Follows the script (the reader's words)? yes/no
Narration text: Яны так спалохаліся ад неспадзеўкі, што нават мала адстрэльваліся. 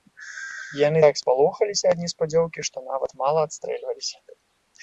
yes